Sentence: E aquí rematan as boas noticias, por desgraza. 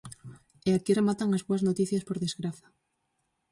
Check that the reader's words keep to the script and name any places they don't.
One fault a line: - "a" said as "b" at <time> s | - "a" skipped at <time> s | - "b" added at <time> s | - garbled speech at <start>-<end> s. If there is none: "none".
none